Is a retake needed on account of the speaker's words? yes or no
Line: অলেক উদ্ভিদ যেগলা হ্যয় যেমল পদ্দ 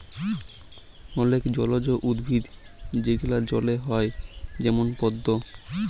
yes